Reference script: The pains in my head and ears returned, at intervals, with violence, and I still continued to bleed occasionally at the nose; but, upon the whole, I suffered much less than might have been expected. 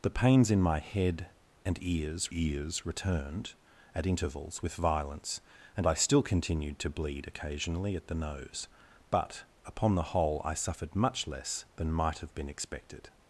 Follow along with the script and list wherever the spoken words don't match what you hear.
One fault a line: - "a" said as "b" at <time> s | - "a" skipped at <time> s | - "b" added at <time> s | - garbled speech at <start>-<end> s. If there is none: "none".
- "ears" added at 2.3 s